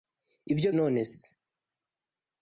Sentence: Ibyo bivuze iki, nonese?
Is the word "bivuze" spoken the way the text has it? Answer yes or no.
no